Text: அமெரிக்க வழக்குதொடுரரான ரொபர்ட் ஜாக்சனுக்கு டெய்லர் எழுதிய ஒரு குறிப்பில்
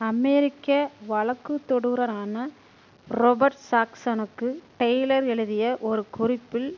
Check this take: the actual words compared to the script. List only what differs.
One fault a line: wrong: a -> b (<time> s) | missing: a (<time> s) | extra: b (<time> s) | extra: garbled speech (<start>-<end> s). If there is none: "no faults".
no faults